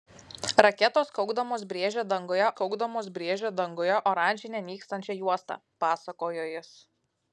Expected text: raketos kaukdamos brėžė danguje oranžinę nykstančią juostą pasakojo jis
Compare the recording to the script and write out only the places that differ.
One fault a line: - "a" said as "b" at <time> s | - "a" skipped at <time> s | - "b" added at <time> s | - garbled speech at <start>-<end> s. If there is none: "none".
- "kaukdamos brėžė danguje" added at 2.6 s